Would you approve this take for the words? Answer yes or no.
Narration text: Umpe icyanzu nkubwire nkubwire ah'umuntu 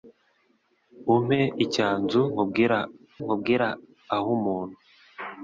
yes